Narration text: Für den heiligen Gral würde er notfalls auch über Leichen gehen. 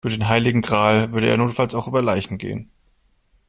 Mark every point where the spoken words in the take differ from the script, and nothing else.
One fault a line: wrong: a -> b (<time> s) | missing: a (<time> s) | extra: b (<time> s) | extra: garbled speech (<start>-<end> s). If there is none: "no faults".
no faults